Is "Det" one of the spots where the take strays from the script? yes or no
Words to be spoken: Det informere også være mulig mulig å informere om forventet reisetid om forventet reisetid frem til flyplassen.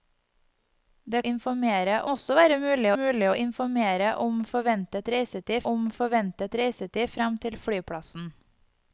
no